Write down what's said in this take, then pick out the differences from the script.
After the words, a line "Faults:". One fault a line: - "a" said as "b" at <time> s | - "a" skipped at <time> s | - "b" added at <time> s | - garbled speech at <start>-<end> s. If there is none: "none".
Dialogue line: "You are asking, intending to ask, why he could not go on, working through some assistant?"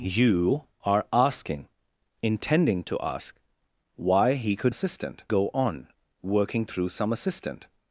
"You are asking, intending to ask, why he could assistant go on, working through some assistant?"
Faults:
- "not" said as "assistant" at 4.7 s